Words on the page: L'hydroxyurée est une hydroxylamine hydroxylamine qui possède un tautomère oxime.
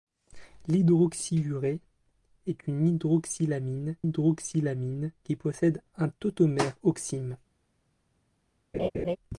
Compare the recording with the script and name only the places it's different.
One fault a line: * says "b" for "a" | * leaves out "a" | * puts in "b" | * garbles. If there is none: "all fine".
all fine